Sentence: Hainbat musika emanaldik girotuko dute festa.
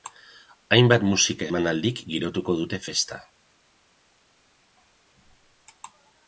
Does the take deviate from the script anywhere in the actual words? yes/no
no